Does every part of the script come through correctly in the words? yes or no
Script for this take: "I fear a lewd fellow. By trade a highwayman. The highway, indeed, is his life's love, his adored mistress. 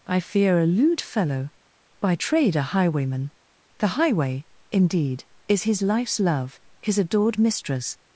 yes